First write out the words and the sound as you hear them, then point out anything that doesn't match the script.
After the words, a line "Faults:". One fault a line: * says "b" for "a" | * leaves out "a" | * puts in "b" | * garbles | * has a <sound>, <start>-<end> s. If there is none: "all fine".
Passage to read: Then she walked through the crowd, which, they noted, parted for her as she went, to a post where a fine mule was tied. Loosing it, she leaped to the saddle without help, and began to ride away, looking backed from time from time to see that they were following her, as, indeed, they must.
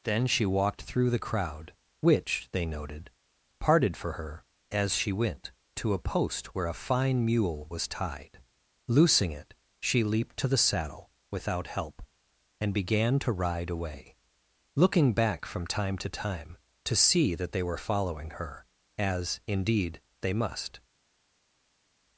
Then she walked through the crowd, which, they noted, parted for her as she went, to a post where a fine mule was tied. Loosing it, she leaped to the saddle without help, and began to ride away, looking back from time to time to see that they were following her, as, indeed, they must.
Faults:
* says "back" for "backed"
* says "to" for "from"